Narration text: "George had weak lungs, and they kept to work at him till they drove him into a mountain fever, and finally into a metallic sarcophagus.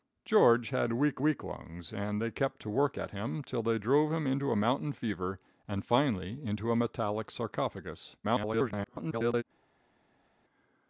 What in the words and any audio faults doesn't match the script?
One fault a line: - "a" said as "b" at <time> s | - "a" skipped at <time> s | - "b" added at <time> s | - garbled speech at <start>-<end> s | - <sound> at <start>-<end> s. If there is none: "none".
- "weak" added at 1.2 s
- garbled speech at 8.2-9.4 s